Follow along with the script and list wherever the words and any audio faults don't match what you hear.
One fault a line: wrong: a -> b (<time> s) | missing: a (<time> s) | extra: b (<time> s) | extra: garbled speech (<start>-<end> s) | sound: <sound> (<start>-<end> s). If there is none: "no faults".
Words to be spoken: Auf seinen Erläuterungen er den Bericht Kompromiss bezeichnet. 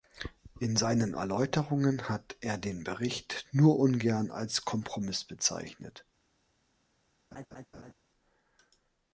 wrong: Auf -> In (0.6 s)
extra: hat (2.1 s)
extra: nur ungern als (3.5 s)
sound: laugh (7.3-7.9 s)